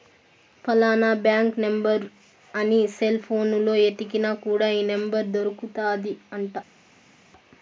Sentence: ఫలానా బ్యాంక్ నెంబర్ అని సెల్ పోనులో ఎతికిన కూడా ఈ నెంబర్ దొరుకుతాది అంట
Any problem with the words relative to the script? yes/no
no